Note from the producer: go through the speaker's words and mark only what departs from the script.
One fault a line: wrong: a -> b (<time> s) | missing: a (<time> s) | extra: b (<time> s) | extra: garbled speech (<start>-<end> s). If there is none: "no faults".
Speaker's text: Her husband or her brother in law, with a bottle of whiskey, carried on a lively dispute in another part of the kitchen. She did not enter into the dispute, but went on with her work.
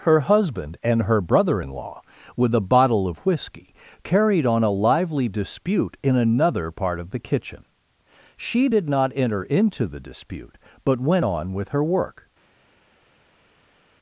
wrong: or -> and (0.8 s)